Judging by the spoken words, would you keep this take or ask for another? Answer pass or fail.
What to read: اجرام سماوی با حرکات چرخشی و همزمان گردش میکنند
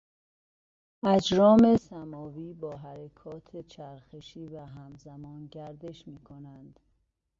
pass